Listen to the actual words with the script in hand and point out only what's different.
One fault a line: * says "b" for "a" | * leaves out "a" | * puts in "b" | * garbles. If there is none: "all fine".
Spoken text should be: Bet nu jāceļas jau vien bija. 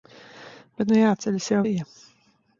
* leaves out "vien"